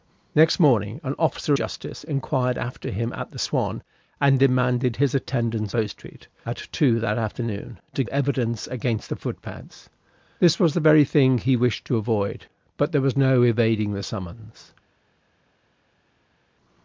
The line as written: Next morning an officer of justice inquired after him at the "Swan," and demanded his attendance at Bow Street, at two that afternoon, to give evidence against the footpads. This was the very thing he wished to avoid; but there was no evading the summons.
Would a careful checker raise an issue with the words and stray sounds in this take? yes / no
yes